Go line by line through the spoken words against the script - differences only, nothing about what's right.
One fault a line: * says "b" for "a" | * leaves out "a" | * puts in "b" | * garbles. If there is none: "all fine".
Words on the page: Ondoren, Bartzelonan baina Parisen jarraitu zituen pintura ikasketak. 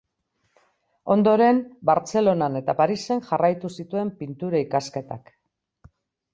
* says "eta" for "baina"